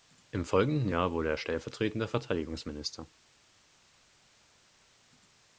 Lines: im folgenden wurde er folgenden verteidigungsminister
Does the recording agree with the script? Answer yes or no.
no